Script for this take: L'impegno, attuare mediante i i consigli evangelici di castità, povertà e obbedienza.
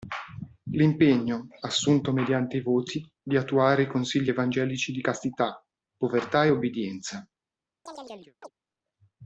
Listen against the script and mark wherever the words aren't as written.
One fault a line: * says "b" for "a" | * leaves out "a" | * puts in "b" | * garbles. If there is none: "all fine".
* says "assunto" for "attuare"
* puts in "voti di attuare"